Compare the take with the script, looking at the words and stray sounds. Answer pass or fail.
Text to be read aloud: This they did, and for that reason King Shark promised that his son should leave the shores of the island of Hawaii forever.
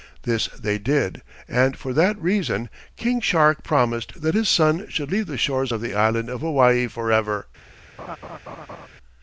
fail